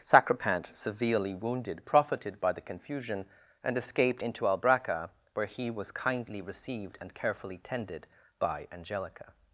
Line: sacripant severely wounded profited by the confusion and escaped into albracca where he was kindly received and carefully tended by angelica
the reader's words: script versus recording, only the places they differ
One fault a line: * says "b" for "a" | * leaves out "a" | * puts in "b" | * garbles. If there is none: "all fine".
all fine